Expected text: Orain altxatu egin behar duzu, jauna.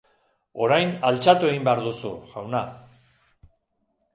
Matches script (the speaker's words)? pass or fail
pass